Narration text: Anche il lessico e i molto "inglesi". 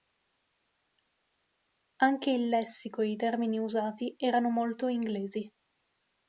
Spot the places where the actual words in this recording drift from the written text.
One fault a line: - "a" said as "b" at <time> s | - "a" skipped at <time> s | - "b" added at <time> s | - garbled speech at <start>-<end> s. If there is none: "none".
- "termini usati erano" added at 3.1 s